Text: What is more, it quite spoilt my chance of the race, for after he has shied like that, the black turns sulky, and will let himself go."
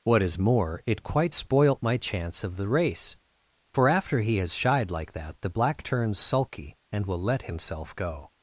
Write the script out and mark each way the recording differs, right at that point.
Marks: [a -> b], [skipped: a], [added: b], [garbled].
What is more, it quite spoilt my chance of the race, for after he has shied like that, the black turns sulky, and will let himself go."